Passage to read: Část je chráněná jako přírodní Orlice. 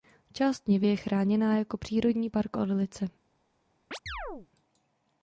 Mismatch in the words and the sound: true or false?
true